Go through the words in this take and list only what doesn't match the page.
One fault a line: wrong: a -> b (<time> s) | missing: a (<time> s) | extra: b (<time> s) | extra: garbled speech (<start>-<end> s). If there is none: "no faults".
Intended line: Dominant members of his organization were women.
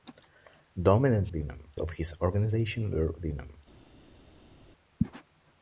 wrong: members -> women (1.3 s)